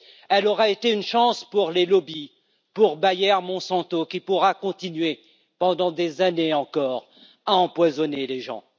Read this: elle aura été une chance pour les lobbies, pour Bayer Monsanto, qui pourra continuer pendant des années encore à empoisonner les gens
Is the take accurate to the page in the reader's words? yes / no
yes